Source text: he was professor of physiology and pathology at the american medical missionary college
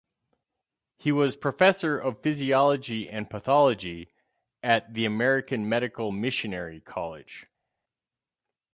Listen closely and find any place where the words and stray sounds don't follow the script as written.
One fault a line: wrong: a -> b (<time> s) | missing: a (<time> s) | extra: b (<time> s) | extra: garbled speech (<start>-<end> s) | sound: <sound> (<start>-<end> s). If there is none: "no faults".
no faults